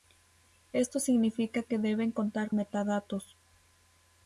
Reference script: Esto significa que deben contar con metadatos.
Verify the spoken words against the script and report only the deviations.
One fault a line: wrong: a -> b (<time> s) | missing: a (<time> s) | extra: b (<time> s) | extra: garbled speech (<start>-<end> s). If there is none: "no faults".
missing: con (2.5 s)